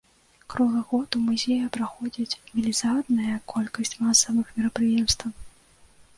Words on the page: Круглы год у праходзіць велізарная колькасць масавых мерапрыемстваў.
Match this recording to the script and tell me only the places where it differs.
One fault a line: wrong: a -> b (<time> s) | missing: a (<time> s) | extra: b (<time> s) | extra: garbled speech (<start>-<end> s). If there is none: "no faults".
extra: музеі (1.2 s)